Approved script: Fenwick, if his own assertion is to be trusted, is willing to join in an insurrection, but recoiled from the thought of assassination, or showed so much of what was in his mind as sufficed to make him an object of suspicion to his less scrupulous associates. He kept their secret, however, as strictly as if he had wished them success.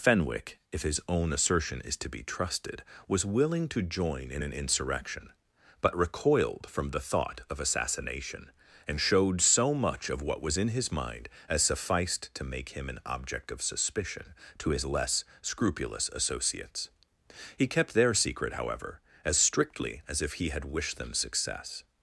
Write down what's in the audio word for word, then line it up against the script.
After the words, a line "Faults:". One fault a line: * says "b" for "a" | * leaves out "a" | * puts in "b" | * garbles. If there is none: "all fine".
Fenwick, if his own assertion is to be trusted, was willing to join in an insurrection, but recoiled from the thought of assassination, and showed so much of what was in his mind as sufficed to make him an object of suspicion to his less scrupulous associates. He kept their secret, however, as strictly as if he had wished them success.
Faults:
* says "was" for "is"
* says "and" for "or"